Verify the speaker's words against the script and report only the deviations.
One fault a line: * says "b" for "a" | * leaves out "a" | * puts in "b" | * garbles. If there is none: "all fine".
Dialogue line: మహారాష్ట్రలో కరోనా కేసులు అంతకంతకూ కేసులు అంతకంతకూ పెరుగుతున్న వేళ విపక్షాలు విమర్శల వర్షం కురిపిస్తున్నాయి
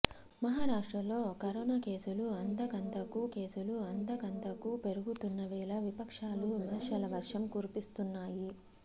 all fine